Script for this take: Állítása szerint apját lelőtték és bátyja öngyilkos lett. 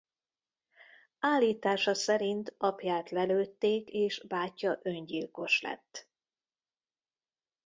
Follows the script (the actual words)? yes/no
yes